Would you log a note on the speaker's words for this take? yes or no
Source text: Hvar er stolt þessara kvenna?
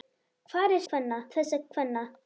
yes